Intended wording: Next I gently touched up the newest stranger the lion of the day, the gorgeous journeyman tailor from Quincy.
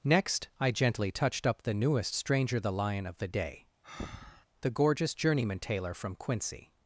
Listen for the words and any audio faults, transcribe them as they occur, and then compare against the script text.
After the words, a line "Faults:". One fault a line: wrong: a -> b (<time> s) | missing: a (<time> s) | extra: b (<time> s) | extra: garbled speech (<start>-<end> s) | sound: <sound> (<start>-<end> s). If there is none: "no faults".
Next I gently touched up the newest stranger the lion of the day, the gorgeous journeyman tailor from Quincy.
Faults:
sound: breath (3.8-4.5 s)